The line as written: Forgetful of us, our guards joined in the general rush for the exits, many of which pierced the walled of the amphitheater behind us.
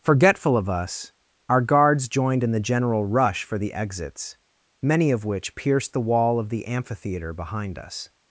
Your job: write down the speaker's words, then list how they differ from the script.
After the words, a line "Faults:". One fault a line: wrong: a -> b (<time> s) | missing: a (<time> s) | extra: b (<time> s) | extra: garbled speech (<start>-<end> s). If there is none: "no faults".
Forgetful of us, our guards joined in the general rush for the exits, many of which pierced the wall of the amphitheater behind us.
Faults:
wrong: walled -> wall (6.0 s)